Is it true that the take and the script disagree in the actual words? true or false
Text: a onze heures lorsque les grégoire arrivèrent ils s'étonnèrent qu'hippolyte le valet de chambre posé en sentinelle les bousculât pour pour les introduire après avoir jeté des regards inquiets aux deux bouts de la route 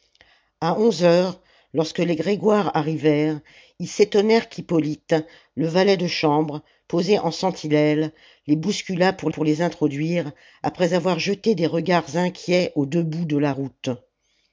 false